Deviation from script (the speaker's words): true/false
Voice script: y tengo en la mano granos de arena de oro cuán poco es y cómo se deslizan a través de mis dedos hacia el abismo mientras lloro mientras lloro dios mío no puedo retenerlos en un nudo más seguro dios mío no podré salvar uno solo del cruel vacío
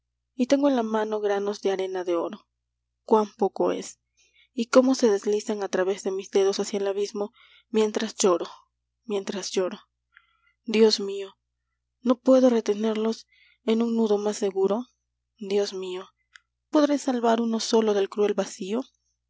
true